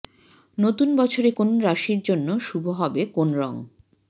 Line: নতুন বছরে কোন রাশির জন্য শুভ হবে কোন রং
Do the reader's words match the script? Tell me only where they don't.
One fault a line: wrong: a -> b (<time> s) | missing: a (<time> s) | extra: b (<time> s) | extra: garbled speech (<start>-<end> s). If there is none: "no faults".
no faults